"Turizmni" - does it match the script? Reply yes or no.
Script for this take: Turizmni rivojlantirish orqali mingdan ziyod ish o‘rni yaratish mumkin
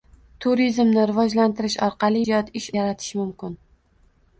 yes